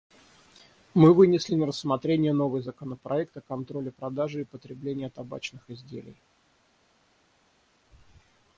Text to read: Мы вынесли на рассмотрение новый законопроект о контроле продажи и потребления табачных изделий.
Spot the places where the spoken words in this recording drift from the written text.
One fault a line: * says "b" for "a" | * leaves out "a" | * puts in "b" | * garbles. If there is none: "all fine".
all fine